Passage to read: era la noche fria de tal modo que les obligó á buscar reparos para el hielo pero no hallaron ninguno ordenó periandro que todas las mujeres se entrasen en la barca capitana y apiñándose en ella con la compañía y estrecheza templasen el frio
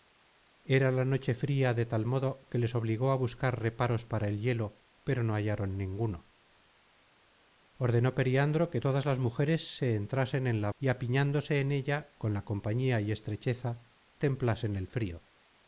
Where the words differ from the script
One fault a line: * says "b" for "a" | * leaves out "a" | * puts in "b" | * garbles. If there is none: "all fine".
* leaves out "barca capitana"